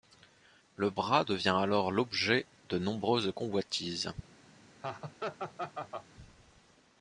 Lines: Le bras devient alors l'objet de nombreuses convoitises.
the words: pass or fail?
pass